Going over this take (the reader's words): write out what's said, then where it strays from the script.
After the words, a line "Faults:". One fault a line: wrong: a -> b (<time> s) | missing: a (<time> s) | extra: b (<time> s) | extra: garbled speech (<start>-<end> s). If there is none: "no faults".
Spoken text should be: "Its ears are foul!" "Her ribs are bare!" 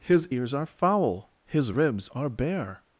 "His ears are foul!" "His ribs are bare!"
Faults:
wrong: Its -> His (0.0 s)
wrong: Her -> His (1.4 s)